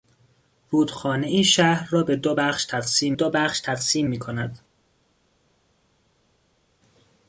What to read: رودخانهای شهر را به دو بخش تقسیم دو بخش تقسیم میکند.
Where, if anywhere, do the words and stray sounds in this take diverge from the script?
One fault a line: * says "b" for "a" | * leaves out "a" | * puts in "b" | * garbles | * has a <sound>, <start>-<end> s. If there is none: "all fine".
all fine